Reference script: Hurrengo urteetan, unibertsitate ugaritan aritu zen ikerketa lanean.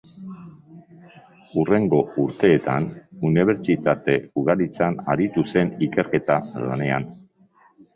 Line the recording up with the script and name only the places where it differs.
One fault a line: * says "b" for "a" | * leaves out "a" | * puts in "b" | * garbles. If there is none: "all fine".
all fine